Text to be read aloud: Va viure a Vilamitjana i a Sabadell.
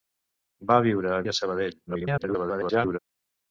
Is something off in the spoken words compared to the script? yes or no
yes